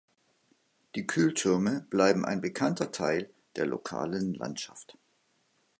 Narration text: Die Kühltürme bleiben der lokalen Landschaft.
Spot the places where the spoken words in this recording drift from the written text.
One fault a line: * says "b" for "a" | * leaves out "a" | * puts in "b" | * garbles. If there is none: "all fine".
* puts in "ein bekannter Teil"